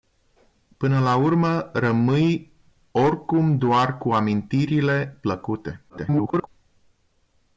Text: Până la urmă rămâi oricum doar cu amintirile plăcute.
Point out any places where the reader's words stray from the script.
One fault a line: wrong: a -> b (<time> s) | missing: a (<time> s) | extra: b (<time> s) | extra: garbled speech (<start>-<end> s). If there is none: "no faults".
extra: garbled speech (5.9-6.5 s)